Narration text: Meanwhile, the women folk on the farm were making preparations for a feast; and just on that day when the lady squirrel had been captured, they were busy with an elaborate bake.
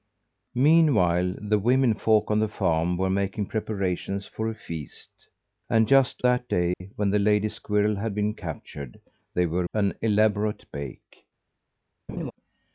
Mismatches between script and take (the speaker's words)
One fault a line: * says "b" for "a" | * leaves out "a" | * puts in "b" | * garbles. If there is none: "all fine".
* leaves out "on"
* leaves out "busy with"